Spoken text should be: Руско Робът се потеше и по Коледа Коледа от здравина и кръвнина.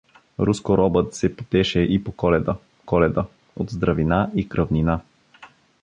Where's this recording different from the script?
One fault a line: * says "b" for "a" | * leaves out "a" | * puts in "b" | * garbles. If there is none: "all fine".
all fine